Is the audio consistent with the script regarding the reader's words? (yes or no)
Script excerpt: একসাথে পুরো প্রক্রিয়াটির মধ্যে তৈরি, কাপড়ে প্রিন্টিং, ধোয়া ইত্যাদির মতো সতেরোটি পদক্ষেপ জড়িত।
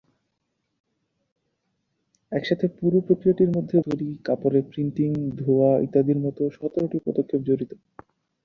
yes